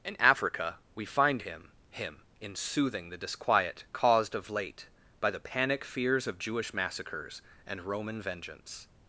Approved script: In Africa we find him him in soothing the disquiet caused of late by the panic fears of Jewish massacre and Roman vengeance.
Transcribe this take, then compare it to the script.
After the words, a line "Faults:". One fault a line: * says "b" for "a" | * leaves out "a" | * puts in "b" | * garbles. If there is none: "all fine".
In Africa we find him him in soothing the disquiet caused of late by the panic fears of Jewish massacres and Roman vengeance.
Faults:
* says "massacres" for "massacre"